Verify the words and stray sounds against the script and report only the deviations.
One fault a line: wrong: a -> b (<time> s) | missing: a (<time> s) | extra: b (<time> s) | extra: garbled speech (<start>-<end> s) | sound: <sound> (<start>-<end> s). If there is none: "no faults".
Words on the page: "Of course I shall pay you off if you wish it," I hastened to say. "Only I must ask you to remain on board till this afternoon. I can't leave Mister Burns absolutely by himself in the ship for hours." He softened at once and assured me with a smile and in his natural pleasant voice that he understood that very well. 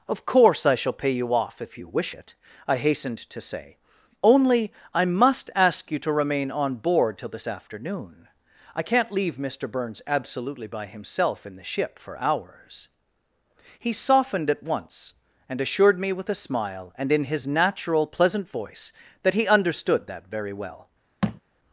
sound: thud (21.2-21.4 s)